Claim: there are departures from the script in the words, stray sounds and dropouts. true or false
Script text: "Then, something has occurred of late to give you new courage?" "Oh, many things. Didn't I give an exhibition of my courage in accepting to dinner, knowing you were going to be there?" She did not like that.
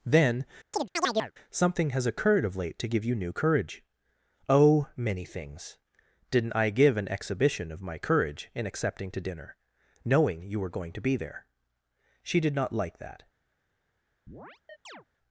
true